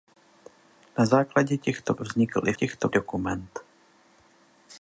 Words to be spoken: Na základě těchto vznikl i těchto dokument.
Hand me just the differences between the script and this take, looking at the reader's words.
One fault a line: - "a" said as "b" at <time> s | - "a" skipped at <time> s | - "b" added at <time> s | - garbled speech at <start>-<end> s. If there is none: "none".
none